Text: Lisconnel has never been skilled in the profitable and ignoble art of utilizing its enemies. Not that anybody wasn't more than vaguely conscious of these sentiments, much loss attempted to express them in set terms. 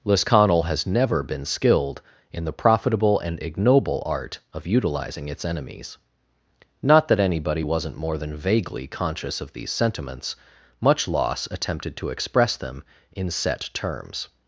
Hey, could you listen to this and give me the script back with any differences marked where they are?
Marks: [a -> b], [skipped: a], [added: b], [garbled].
Lisconnel has never been skilled in the profitable and ignoble art of utilizing its enemies. Not that anybody wasn't more than vaguely conscious of these sentiments, much loss attempted to express them in set terms.